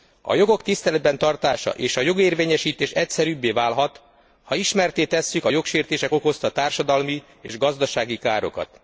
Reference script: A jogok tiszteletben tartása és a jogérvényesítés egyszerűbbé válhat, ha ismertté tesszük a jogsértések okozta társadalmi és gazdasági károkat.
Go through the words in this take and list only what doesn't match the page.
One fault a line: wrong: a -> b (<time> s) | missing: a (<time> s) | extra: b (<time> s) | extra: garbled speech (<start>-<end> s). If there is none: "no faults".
no faults